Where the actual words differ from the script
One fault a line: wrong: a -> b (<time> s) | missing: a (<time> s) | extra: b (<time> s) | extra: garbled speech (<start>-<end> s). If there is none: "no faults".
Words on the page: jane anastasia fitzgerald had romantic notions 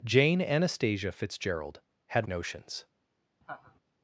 missing: romantic (2.3 s)